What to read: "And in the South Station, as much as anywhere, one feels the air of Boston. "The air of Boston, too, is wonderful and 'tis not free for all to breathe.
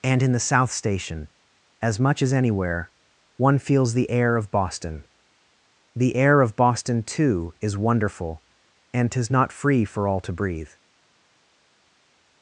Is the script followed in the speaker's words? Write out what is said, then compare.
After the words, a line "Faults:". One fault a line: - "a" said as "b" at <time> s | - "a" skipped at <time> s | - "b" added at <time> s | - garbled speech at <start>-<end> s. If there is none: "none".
"And in the South Station, as much as anywhere, one feels the air of Boston. "The air of Boston, too, is wonderful and 'tis not free for all to breathe.
Faults:
none